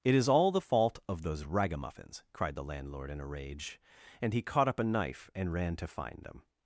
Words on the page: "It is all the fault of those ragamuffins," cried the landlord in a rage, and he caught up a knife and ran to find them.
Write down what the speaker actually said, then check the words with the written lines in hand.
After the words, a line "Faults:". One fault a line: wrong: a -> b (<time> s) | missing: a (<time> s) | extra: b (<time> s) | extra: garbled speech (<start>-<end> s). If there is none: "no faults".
"It is all the fault of those ragamuffins," cried the landlord in a rage, and he caught up a knife and ran to find them.
Faults:
no faults